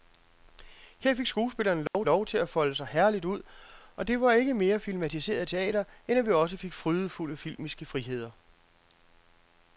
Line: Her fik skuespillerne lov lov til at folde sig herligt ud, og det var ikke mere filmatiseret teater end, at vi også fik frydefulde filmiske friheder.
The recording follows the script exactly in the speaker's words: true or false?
true